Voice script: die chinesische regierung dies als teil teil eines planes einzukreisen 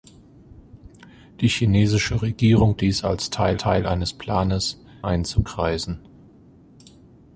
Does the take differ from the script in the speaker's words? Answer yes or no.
no